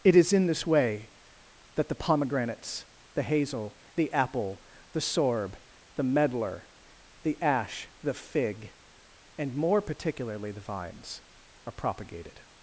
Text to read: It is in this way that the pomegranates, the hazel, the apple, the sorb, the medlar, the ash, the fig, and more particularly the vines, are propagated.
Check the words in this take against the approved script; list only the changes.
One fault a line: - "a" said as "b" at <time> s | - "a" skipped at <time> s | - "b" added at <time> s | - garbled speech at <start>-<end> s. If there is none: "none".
none